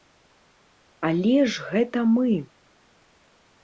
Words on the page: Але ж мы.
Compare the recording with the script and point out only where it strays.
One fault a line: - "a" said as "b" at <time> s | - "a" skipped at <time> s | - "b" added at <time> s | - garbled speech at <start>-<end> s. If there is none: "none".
- "гэта" added at 1.7 s